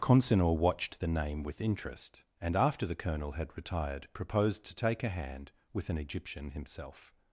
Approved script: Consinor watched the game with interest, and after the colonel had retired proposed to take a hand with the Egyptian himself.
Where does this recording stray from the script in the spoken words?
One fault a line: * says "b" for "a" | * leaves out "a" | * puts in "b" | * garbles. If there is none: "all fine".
* says "name" for "game"
* says "an" for "the"